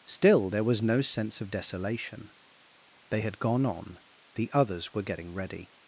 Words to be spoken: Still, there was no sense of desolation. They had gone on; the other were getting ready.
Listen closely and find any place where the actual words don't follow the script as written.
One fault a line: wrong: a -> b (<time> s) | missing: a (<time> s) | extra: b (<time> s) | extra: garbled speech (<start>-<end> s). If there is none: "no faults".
wrong: other -> others (4.5 s)